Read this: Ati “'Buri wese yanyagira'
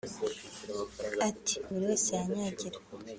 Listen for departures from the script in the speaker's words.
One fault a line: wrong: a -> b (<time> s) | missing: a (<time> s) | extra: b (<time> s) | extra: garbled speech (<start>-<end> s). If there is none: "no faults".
no faults